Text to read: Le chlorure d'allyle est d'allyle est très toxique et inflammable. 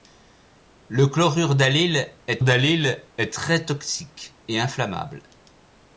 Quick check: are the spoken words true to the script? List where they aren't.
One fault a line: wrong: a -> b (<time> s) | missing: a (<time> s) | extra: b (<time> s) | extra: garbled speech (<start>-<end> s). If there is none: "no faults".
no faults